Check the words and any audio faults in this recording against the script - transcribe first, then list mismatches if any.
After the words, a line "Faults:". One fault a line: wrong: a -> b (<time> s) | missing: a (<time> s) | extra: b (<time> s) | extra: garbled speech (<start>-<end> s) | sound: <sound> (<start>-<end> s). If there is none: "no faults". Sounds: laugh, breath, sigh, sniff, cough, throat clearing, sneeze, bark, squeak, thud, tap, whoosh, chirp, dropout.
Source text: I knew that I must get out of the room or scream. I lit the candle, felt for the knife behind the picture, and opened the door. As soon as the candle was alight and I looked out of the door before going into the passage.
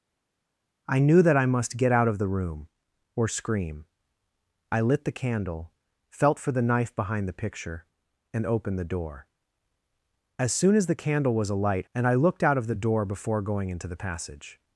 I knew that I must get out of the room or scream. I lit the candle, felt for the knife behind the picture, and opened the door. As soon as the candle was alight and I looked out of the door before going into the passage.
Faults:
no faults